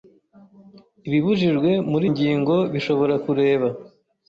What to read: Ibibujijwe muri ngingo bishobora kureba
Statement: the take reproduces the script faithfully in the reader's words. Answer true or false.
true